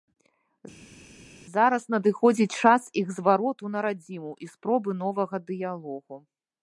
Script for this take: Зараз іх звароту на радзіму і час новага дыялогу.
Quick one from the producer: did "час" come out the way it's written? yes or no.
no